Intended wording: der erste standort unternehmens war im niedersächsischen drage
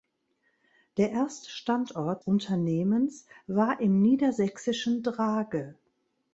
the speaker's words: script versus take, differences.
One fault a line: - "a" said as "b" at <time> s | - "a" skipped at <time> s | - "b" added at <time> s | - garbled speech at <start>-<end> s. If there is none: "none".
none